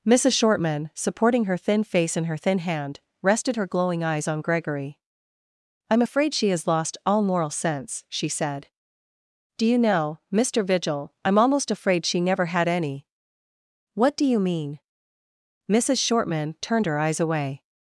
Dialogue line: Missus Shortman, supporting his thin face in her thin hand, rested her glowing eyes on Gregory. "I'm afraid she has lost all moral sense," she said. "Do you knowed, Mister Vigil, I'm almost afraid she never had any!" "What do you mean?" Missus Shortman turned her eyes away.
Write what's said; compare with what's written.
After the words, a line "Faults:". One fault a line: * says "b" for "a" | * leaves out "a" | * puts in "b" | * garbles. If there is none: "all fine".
Missus Shortman, supporting her thin face in her thin hand, rested her glowing eyes on Gregory. "I'm afraid she has lost all moral sense," she said. "Do you know, Mister Vigil, I'm almost afraid she never had any!" "What do you mean?" Missus Shortman turned her eyes away.
Faults:
* says "her" for "his"
* says "know" for "knowed"